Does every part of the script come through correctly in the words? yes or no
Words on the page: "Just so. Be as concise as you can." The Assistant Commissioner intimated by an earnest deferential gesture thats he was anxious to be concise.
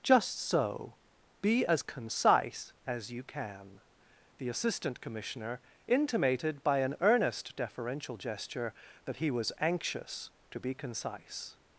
no